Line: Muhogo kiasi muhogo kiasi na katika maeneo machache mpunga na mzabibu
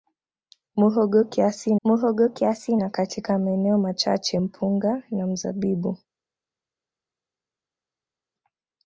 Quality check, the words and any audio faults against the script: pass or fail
pass